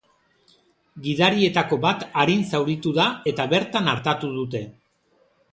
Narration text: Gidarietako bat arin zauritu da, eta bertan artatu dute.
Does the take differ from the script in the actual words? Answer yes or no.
no